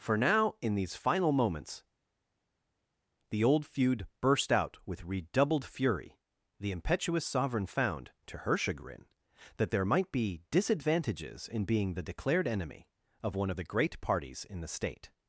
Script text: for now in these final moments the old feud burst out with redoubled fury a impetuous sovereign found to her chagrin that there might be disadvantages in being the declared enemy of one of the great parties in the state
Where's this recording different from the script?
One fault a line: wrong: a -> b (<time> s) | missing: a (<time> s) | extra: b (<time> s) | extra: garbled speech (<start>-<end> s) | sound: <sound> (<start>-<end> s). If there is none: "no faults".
wrong: a -> the (6.6 s)